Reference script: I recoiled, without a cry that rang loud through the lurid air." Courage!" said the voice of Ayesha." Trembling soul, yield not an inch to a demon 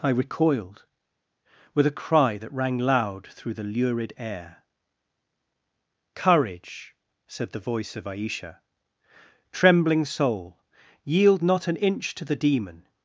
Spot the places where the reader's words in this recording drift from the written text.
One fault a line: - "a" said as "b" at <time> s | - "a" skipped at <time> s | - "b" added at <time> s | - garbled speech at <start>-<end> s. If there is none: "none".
- "without" said as "with" at 1.7 s
- "a" said as "the" at 12.2 s